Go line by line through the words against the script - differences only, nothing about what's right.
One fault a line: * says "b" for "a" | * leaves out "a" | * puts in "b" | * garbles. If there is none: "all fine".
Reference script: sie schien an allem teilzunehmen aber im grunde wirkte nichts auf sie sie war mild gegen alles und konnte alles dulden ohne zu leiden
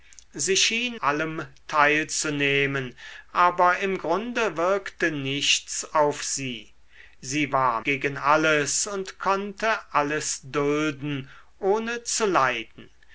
* leaves out "an"
* leaves out "mild"